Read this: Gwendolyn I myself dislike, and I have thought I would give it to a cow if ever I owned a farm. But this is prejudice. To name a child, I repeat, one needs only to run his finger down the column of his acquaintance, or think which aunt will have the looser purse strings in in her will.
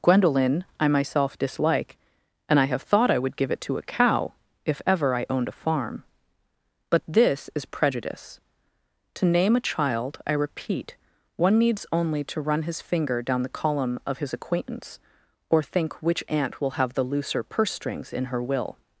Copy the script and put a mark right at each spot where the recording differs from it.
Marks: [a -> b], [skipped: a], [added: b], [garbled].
Gwendolyn I myself dislike, and I have thought I would give it to a cow if ever I owned a farm. But this is prejudice. To name a child, I repeat, one needs only to run his finger down the column of his acquaintance, or think which aunt will have the looser purse strings in [skipped: in] her will.